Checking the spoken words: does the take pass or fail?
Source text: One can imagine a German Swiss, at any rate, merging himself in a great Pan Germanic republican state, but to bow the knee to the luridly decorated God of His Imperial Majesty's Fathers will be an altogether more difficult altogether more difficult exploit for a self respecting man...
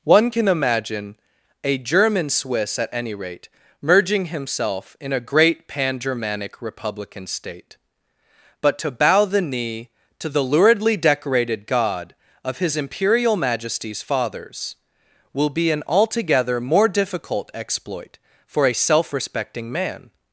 fail